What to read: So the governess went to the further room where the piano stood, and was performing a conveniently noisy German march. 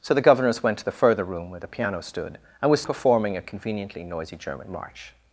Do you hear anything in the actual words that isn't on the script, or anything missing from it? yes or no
no